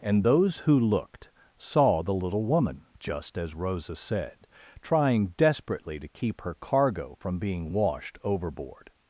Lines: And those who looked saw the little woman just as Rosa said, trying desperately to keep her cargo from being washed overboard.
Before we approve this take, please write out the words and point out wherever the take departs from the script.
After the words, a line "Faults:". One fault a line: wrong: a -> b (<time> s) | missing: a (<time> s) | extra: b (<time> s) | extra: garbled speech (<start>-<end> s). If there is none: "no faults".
And those who looked saw the little woman just as Rosa said, trying desperately to keep her cargo from being washed overboard.
Faults:
no faults